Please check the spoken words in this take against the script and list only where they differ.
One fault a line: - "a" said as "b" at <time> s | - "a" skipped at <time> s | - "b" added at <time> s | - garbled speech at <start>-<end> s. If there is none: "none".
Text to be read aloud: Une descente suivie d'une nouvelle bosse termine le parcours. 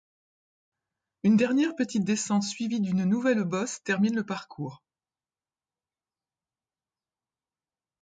- "dernière petite" added at 1.4 s